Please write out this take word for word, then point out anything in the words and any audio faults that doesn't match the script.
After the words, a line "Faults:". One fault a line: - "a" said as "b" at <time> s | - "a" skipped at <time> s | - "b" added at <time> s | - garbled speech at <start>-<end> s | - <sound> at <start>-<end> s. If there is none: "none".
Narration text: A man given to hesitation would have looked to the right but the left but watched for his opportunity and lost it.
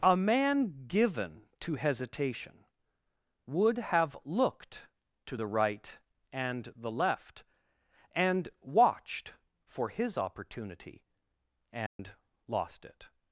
A man given to hesitation would have looked to the right and the left and watched for his opportunity and lost it.
Faults:
- "but" said as "and" at 6.3 s
- "but" said as "and" at 8.1 s
- dropout at 11.9-12.0 s